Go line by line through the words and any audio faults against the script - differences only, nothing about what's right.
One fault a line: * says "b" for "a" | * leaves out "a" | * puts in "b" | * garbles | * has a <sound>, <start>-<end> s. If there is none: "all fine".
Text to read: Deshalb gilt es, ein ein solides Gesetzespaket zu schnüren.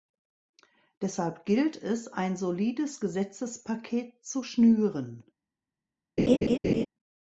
* leaves out "ein"
* has a laugh, 6.2-6.9 s